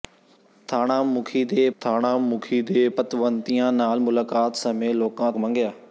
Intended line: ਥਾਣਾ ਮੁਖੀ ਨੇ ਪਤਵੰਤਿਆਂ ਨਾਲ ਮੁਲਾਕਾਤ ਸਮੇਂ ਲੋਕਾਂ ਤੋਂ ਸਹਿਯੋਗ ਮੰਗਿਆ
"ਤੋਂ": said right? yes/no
no